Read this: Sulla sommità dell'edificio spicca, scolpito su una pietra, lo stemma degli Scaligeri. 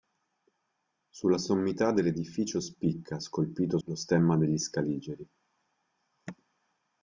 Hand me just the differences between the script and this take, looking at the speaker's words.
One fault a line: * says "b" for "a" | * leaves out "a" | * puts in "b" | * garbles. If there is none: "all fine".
* leaves out "su una pietra"